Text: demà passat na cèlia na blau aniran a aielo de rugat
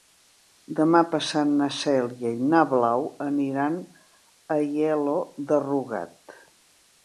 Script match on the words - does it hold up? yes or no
no